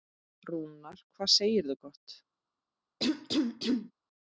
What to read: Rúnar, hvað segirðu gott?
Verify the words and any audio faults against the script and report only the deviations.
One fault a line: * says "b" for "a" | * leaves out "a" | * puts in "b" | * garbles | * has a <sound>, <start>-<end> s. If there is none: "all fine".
* has a cough, 3.0-3.9 s